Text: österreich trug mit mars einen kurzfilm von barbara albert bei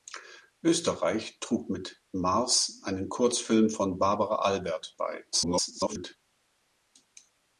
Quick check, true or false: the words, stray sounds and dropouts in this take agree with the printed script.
false